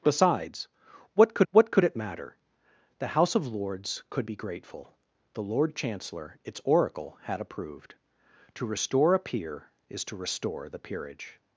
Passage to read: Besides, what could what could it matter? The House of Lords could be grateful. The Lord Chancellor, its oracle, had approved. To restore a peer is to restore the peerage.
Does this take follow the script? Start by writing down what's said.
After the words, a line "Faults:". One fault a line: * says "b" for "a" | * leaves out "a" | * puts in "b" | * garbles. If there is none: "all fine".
Besides, what could what could it matter? The House of Lords could be grateful. The Lord Chancellor, its oracle, had approved. To restore a peer is to restore the peerage.
Faults:
all fine